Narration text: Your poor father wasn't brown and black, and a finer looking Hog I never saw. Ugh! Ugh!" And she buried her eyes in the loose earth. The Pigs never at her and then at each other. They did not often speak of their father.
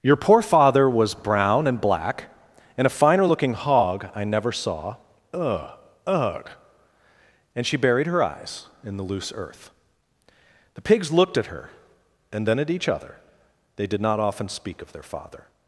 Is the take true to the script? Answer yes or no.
no